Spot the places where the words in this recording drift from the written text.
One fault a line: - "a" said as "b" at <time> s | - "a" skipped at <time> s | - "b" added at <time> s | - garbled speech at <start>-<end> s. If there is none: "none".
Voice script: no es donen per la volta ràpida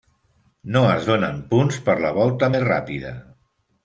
- "punts" added at 1.5 s
- "més" added at 2.5 s